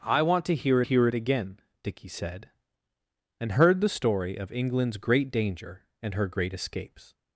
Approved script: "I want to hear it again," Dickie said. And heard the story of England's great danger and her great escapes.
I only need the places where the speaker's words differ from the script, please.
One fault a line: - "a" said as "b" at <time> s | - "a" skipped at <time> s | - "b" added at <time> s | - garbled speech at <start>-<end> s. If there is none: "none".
- "hear" added at 0.8 s